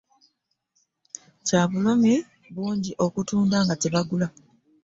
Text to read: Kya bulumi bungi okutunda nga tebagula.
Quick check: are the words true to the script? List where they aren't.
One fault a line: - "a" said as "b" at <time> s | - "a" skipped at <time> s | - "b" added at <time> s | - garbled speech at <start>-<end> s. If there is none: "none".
none